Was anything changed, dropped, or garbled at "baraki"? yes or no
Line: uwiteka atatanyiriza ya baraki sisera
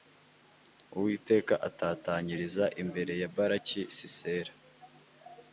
no